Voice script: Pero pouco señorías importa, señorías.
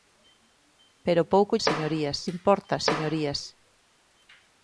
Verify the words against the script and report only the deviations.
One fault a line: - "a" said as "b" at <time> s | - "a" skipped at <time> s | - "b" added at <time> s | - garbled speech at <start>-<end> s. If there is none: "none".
none